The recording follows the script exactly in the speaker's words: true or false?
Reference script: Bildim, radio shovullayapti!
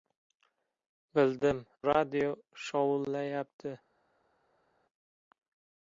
true